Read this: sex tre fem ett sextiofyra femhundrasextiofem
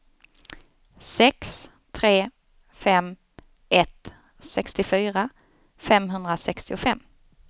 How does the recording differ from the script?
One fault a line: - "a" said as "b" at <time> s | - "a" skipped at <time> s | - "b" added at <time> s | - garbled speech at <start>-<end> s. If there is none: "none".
none